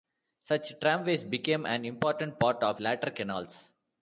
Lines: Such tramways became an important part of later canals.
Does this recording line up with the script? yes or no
yes